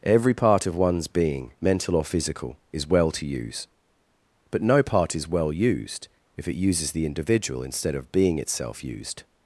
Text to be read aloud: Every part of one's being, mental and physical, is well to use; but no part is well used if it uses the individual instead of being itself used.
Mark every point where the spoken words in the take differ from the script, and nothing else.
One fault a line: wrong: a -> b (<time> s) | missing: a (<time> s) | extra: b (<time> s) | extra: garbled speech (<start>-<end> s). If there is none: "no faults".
wrong: and -> or (1.9 s)